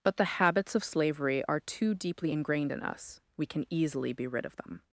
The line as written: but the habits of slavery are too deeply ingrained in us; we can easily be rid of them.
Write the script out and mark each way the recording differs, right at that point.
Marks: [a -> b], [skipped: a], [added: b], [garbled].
but the habits of slavery are too deeply ingrained in us; we can easily be rid of them.